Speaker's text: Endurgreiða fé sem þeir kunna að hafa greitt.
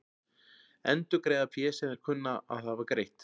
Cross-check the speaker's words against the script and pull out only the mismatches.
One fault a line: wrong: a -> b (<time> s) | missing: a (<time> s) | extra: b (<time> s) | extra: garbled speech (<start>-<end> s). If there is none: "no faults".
no faults